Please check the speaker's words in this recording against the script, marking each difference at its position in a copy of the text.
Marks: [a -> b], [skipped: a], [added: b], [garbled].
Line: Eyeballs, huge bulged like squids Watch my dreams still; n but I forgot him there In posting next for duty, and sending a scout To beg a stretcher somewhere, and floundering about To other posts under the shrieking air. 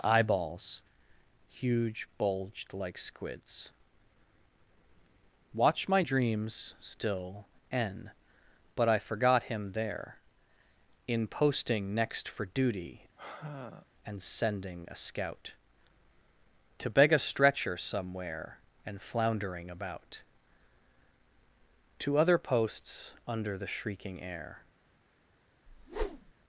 Eyeballs, huge bulged like squids Watch my dreams still; n but I forgot him there In posting next for duty, and sending a scout To beg a stretcher somewhere, and floundering about To other posts under the shrieking air.